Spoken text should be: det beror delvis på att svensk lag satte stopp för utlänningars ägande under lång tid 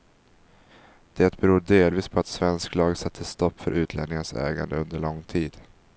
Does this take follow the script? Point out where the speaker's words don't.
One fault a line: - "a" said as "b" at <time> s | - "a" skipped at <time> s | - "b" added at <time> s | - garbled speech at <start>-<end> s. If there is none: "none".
none